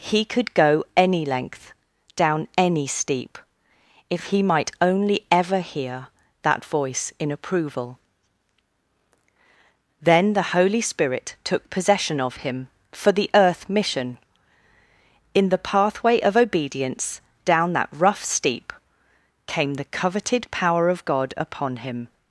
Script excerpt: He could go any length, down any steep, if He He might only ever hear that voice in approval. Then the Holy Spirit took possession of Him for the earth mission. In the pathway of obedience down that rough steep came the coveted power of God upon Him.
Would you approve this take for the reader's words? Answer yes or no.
no